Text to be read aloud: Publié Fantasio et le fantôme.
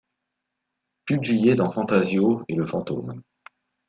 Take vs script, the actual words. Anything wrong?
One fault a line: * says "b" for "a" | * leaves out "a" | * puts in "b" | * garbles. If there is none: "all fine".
* puts in "dans"